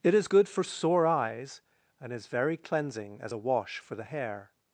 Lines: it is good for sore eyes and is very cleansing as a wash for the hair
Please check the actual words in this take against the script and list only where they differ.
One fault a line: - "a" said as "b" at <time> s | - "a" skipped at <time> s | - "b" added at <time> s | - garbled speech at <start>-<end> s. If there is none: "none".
none